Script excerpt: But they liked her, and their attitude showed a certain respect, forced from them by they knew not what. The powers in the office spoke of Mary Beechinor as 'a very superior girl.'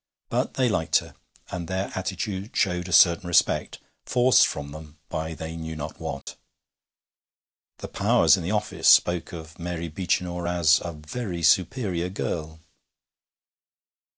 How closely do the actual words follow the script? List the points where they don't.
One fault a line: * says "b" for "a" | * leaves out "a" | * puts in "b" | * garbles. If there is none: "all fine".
all fine